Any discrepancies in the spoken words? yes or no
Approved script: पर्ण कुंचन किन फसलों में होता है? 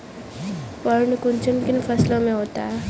no